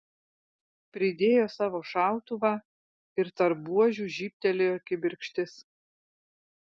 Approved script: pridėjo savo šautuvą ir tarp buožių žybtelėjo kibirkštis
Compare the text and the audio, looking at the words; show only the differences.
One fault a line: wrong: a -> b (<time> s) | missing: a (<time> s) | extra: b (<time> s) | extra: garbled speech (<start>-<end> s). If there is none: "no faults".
no faults